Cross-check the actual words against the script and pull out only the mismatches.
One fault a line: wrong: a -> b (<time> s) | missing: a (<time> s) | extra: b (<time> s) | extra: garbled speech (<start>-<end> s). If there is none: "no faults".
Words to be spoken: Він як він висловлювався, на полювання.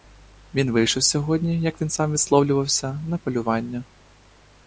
extra: вийшов сьогодні (0.7 s)
extra: сам (1.9 s)